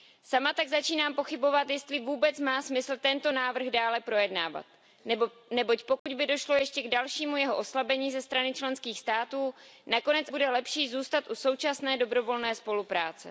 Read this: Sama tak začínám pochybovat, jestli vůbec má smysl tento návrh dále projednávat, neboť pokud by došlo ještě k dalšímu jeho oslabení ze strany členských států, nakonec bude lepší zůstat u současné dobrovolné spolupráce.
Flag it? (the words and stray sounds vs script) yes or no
yes